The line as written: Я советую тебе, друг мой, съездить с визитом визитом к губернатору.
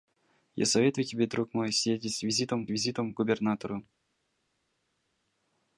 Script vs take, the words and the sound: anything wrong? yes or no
no